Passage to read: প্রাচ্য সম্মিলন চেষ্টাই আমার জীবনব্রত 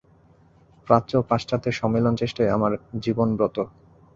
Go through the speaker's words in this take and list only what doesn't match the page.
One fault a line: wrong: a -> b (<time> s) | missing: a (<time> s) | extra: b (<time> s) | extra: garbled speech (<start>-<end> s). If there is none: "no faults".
extra: ও পাশ্চাত্যের (1.2 s)